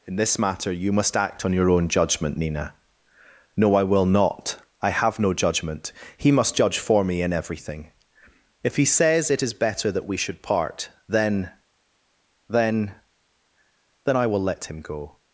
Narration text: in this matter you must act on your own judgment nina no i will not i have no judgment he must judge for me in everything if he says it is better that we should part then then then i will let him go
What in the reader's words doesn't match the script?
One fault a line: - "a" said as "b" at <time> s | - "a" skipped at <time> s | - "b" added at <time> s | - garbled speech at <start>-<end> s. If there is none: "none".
none